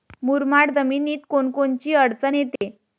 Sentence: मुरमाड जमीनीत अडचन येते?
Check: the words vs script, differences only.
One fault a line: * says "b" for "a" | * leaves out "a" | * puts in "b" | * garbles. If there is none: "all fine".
* puts in "कोनकोनची"